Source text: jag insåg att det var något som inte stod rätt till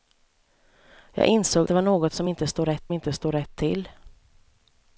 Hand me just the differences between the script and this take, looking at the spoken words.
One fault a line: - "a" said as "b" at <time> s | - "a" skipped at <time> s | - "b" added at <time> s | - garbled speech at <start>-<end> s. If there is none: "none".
- "att" skipped at 1.7 s
- "inte stod rätt" added at 2.9 s